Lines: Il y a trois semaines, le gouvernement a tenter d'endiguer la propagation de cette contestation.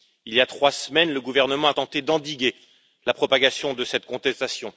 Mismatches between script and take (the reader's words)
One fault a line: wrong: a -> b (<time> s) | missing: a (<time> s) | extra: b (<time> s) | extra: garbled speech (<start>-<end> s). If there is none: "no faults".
no faults